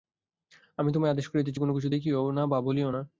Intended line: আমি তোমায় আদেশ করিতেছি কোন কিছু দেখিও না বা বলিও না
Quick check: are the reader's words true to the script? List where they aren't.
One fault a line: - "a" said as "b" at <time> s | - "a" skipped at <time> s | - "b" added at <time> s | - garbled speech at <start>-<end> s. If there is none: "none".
none